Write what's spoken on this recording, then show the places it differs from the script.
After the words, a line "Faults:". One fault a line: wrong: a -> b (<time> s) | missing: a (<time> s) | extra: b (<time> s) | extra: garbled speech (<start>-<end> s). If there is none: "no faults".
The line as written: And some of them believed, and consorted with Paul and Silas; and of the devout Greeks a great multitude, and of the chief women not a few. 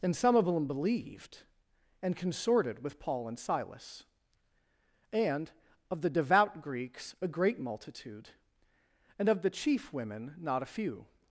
And some of them believed, and consorted with Paul and Silas; and of the devout Greeks a great multitude, and of the chief women not a few.
Faults:
no faults